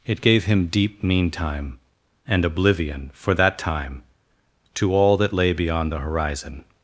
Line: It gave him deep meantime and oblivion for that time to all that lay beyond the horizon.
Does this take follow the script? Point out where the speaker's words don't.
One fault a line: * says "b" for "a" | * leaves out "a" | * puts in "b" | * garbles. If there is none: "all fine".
all fine